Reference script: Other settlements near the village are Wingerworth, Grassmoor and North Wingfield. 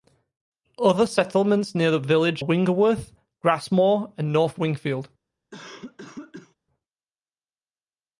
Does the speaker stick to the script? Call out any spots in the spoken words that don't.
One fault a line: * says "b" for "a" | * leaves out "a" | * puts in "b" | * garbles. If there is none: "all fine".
* leaves out "are"